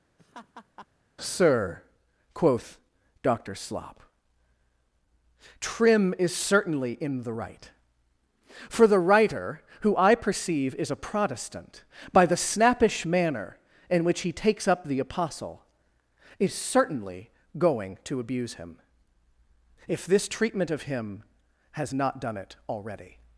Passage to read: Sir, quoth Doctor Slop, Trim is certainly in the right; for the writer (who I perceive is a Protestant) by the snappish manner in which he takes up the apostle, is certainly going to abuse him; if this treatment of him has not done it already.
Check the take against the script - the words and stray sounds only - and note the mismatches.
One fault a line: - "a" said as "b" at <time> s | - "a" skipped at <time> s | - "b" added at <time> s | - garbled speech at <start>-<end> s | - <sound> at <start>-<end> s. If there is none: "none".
- laugh at 0.2-0.9 s